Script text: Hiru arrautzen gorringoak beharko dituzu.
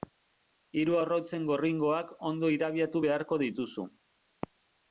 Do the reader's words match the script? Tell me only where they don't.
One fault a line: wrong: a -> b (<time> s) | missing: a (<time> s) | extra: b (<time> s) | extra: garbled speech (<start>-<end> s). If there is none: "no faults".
extra: ondo irabiatu (2.3 s)